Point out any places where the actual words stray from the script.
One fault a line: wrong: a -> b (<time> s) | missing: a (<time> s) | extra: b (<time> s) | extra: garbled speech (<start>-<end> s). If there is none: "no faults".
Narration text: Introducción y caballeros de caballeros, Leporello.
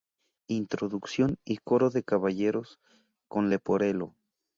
wrong: caballeros -> coro (1.6 s)
extra: con (3.3 s)